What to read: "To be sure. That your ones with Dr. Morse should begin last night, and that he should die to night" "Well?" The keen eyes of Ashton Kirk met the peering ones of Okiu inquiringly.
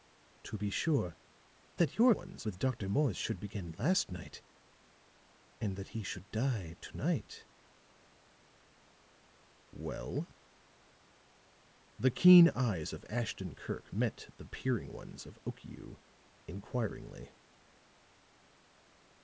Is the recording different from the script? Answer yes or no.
no